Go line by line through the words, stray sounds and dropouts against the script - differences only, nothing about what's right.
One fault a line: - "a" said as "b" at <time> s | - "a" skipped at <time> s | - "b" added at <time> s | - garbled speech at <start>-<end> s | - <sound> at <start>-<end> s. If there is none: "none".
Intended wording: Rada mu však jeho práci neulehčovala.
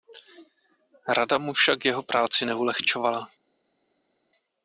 none